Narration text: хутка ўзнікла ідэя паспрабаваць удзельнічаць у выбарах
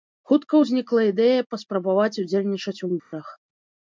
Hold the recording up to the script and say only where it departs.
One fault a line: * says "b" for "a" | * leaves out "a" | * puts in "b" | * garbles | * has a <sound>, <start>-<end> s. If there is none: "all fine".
* has a dropout, 3.0-3.1 s